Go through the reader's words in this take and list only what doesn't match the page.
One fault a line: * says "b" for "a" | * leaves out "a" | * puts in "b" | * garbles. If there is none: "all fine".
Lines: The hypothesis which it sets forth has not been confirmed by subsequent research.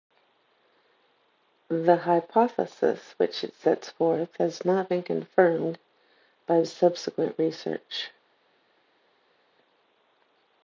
all fine